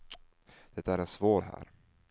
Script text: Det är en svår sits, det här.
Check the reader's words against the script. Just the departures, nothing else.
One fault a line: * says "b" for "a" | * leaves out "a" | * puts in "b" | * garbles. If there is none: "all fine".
* leaves out "sits det"